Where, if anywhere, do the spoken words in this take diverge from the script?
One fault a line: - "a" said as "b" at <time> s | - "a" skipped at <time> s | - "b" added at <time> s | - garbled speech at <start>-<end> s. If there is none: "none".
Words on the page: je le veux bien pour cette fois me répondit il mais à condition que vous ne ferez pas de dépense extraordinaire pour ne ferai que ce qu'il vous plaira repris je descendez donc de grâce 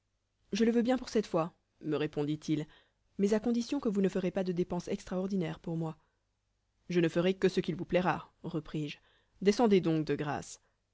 - "moi je" added at 5.8 s